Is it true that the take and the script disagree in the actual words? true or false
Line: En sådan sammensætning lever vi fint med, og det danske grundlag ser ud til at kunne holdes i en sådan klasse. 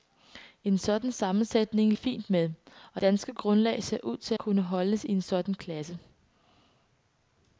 true